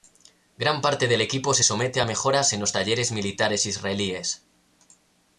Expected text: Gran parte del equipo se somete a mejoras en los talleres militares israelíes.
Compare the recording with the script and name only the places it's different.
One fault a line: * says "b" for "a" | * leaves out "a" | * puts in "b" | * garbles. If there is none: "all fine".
all fine